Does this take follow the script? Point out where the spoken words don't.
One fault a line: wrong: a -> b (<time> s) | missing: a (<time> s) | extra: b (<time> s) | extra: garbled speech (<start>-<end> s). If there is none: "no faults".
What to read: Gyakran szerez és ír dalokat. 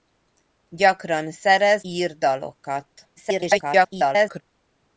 missing: és (1.9 s)
extra: garbled speech (3.2-4.4 s)